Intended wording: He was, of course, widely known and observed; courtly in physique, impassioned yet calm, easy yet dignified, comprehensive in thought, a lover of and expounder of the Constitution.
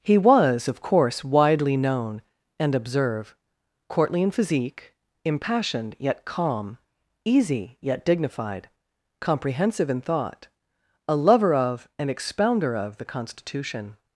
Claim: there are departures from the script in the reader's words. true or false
true